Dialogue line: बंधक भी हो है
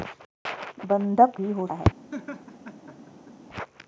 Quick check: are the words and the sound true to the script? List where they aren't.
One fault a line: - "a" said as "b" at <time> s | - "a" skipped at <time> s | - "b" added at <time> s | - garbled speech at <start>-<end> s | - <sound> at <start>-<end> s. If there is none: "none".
- laugh at 2.1-3.3 s